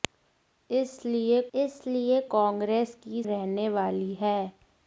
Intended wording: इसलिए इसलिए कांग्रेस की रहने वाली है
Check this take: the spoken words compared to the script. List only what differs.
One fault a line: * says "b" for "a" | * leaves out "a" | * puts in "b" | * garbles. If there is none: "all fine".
all fine